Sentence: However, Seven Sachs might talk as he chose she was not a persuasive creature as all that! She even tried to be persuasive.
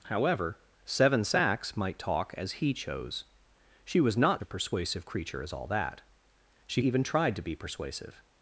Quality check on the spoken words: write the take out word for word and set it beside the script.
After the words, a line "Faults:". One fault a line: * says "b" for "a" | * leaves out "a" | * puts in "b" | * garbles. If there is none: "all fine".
However, Seven Sachs might talk as he chose she was not a persuasive creature as all that! She even tried to be persuasive.
Faults:
all fine